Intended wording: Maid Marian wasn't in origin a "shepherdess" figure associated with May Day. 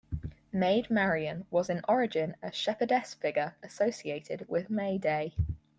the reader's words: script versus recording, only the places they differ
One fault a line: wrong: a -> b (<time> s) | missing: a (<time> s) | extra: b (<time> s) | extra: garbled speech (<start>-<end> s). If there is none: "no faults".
wrong: wasn't -> was (1.5 s)